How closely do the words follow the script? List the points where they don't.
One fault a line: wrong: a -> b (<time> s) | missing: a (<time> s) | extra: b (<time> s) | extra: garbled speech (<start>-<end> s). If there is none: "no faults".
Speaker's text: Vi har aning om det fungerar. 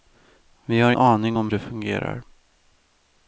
no faults